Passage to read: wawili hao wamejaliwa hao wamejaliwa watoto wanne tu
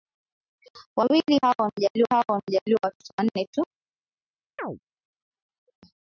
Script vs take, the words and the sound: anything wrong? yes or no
yes